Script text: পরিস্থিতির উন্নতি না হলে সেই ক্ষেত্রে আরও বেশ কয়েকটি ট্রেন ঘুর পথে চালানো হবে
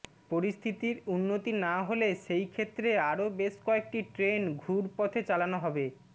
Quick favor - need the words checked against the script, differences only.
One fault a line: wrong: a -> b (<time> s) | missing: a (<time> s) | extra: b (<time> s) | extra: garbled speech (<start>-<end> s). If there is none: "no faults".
no faults